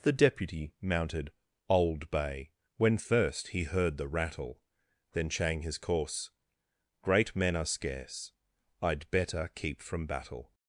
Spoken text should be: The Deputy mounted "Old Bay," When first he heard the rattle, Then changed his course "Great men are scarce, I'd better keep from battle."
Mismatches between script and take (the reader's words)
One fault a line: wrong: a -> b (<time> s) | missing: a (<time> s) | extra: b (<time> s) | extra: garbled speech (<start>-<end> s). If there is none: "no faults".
wrong: changed -> chang (5.3 s)